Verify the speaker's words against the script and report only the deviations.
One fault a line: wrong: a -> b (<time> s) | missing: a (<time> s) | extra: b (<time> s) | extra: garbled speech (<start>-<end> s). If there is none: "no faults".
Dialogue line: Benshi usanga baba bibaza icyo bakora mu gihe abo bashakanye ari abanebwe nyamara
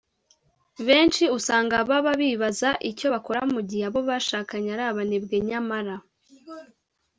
no faults